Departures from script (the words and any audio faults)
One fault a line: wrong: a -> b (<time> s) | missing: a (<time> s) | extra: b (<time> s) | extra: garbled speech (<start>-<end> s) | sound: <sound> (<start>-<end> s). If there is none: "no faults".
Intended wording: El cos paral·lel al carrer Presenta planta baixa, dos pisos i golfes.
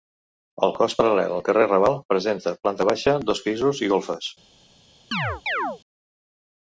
extra: Raval (1.7 s)
sound: chirp (5.1-5.8 s)